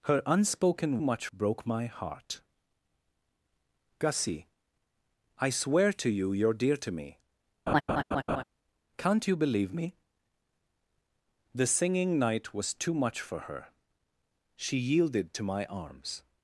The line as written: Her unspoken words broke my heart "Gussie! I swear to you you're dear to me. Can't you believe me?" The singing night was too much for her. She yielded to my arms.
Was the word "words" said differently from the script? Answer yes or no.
yes